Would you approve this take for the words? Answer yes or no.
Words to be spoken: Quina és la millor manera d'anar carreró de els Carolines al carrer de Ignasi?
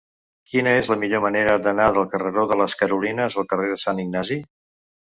no